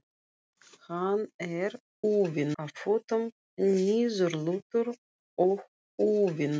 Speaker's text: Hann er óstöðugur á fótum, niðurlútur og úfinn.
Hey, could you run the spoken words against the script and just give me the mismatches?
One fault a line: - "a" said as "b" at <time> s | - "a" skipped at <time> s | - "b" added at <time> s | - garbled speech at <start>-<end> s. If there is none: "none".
- "óstöðugur" said as "úfinn" at 2.1 s